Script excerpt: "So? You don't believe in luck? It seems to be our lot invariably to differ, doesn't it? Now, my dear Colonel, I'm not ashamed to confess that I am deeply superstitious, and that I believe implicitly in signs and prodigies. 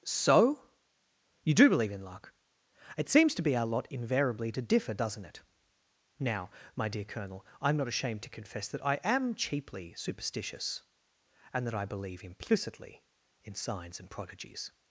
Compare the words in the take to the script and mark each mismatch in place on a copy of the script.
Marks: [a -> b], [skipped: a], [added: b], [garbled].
"So? You [don't -> do] believe in luck? It seems to be our lot invariably to differ, doesn't it? Now, my dear Colonel, I'm not ashamed to confess that I am [deeply -> cheaply] superstitious, and that I believe implicitly in signs and prodigies.